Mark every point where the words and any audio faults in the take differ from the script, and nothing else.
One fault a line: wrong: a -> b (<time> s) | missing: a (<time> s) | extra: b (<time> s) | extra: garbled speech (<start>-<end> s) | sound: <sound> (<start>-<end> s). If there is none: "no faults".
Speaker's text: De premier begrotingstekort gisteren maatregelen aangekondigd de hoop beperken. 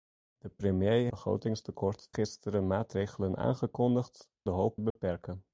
sound: dropout (4.9-5.0 s)